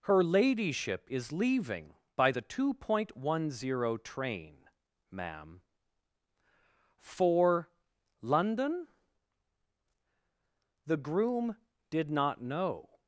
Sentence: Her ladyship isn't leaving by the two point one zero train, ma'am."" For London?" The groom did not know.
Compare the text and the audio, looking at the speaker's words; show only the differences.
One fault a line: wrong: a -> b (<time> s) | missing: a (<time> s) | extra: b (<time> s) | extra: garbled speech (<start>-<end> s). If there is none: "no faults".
wrong: isn't -> is (1.1 s)